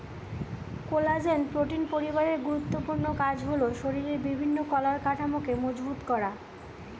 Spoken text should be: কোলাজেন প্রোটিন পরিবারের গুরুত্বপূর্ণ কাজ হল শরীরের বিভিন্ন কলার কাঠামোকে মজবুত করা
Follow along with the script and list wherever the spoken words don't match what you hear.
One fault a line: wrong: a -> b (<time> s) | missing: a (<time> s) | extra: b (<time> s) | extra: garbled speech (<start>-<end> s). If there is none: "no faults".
no faults